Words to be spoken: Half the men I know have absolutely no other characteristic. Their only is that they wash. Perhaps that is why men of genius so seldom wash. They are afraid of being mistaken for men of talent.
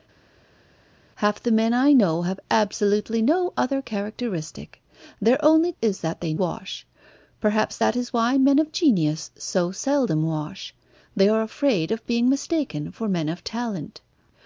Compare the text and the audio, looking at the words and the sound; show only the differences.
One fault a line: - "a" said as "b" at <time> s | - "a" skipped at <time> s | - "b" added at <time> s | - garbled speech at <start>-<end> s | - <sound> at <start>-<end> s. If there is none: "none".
none